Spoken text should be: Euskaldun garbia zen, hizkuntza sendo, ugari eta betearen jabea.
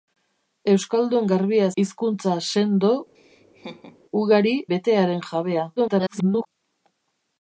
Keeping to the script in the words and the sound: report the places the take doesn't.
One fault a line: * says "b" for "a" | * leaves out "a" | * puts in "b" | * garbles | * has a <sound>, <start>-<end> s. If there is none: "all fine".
* leaves out "zen"
* has a laugh, 3.1-4.0 s
* leaves out "eta"
* garbles